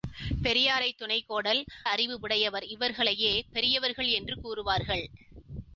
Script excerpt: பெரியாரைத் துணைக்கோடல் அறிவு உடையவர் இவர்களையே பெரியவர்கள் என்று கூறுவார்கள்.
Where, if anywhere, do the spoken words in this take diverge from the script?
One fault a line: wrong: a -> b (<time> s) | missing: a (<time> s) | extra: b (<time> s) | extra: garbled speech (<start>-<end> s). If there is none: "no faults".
no faults